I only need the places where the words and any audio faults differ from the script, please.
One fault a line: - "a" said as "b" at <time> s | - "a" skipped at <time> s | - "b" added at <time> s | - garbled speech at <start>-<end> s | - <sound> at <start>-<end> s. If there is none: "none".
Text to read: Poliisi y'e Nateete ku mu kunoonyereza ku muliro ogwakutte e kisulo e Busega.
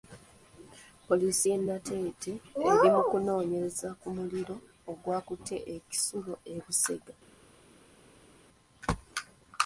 - "ku" said as "eri" at 2.7 s